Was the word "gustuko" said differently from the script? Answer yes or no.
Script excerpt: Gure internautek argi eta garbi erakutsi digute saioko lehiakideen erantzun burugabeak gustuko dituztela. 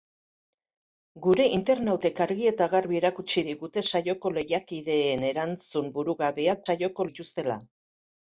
yes